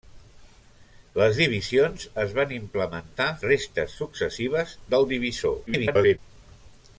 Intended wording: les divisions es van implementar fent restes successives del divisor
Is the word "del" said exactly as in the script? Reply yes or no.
yes